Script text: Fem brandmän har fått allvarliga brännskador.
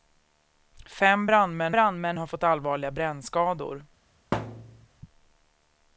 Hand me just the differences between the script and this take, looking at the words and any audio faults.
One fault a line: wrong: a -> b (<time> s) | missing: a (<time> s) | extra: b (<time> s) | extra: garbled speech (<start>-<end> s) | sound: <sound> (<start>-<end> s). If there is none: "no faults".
extra: brandmän (1.7 s)
sound: thud (4.3-4.9 s)